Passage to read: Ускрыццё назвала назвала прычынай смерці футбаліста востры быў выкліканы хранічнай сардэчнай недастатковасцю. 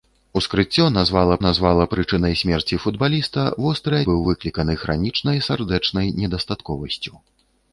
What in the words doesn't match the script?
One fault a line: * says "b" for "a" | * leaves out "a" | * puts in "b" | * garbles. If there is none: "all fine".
all fine